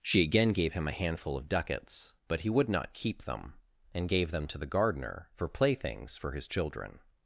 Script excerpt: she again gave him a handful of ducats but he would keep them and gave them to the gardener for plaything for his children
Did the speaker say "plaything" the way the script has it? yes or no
no